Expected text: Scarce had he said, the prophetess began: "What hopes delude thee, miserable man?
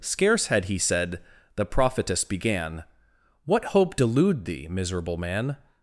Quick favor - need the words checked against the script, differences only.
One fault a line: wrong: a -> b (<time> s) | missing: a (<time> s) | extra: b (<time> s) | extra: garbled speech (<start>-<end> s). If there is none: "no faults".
wrong: hopes -> hope (3.6 s)